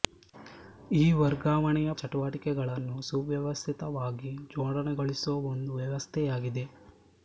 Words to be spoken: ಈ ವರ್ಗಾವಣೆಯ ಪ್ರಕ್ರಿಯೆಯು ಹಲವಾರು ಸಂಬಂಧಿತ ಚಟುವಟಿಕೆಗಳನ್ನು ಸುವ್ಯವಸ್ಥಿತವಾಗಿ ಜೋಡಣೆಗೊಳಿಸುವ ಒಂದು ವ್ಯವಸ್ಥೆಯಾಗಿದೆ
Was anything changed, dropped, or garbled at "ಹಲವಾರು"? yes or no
yes